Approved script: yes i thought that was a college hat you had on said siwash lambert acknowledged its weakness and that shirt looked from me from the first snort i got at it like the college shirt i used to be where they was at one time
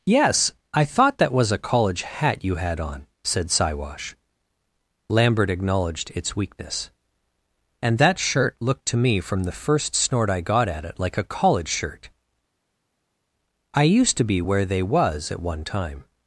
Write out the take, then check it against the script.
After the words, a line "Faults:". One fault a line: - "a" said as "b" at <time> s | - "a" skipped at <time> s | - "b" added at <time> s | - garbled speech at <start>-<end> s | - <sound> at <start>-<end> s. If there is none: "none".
yes i thought that was a college hat you had on said siwash lambert acknowledged its weakness and that shirt looked to me from the first snort i got at it like a college shirt i used to be where they was at one time
Faults:
- "from" said as "to" at 8.9 s
- "the" said as "a" at 11.2 s